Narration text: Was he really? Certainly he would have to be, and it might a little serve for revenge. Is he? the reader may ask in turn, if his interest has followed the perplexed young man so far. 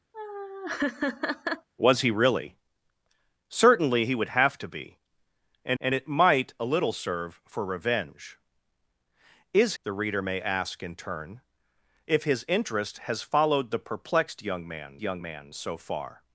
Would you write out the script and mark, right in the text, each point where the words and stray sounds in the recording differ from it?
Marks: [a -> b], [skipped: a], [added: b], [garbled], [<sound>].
[laugh] Was he really? Certainly he would have to be, and [added: and] it might a little serve for revenge. Is [skipped: he?] the reader may ask in turn, if his interest has followed the perplexed young man [added: young man] so far.